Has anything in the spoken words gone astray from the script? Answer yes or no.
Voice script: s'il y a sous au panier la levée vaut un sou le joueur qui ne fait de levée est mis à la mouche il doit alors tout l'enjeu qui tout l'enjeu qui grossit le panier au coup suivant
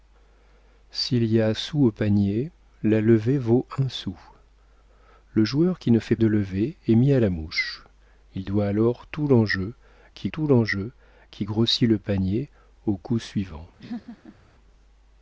no